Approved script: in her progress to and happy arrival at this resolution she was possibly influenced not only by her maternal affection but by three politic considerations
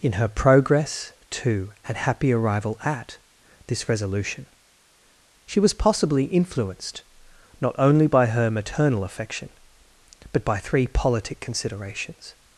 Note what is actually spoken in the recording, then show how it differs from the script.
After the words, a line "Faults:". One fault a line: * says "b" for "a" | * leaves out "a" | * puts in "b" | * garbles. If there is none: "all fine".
in her progress to and happy arrival at this resolution she was possibly influenced not only by her maternal affection but by three politic considerations
Faults:
all fine